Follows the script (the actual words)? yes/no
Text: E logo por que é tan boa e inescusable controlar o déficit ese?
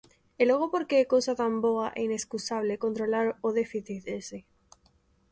no